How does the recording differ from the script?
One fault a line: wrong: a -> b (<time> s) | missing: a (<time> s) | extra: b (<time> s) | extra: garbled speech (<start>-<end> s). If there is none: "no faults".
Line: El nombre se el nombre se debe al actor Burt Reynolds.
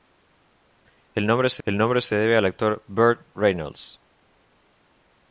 no faults